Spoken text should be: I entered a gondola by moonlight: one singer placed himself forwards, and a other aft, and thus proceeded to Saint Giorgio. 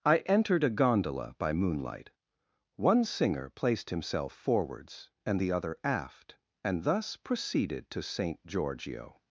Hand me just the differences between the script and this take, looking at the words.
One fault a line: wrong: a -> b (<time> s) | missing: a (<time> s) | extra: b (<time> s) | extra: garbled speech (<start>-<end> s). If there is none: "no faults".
wrong: a -> the (5.4 s)